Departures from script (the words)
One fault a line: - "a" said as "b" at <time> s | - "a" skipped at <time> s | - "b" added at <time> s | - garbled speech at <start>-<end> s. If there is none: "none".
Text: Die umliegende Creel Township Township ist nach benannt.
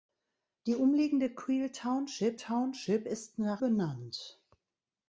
none